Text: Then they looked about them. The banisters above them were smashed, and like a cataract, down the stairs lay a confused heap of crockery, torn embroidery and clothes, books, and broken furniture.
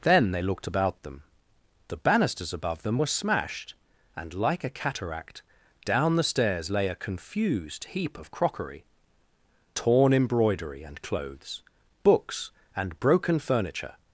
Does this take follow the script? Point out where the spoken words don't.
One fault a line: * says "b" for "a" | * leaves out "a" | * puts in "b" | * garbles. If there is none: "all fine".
all fine